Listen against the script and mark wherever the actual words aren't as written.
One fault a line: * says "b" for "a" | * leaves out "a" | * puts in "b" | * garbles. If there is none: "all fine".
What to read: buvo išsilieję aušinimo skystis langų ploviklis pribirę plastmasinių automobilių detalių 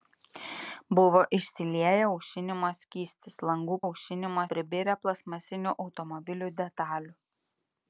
* says "aušinimo" for "ploviklis"